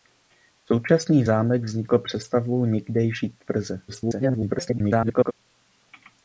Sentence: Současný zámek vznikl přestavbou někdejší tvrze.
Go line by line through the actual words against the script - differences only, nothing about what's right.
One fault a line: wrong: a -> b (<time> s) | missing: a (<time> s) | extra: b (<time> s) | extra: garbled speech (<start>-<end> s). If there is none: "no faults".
extra: garbled speech (3.9-5.3 s)